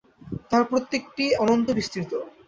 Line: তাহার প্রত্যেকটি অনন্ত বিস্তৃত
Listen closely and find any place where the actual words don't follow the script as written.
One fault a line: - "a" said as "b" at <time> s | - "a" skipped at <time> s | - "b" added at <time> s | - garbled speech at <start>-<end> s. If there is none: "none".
none